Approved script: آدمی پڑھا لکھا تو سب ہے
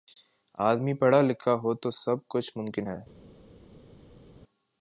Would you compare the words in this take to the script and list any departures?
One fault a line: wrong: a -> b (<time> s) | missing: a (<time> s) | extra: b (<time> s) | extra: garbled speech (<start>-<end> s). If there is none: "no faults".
extra: ہو (1.6 s)
extra: کچھ ممکن (2.3 s)